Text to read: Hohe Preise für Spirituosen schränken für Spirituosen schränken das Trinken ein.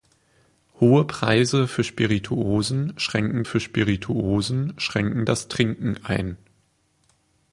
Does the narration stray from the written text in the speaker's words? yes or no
no